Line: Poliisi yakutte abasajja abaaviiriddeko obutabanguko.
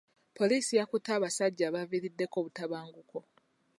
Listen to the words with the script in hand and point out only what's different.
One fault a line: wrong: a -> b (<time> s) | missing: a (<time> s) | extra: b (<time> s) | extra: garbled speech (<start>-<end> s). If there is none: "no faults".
no faults